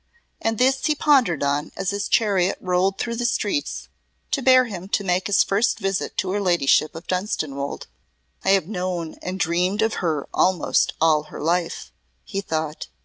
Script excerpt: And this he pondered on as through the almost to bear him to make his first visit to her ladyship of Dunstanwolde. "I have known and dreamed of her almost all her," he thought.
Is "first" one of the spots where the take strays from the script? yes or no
no